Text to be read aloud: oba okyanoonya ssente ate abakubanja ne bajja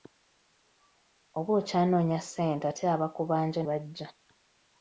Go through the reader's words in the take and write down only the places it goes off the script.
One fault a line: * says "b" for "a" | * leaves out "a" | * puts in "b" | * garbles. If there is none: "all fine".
* leaves out "ne"